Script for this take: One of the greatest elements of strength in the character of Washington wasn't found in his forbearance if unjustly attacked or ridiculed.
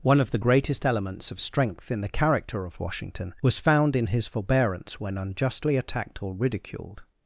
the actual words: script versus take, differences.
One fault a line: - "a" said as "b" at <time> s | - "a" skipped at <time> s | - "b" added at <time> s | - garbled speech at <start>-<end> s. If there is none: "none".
- "wasn't" said as "was" at 3.4 s
- "if" said as "when" at 5.0 s